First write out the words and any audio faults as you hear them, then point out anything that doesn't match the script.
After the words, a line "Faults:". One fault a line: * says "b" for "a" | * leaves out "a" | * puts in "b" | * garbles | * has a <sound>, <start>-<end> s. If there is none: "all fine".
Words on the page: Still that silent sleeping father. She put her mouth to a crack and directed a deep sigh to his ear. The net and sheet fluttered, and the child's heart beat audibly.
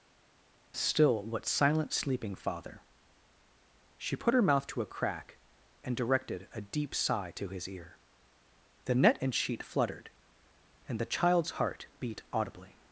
Still what silent sleeping father. She put her mouth to a crack and directed a deep sigh to his ear. The net and sheet fluttered, and the child's heart beat audibly.
Faults:
* says "what" for "that"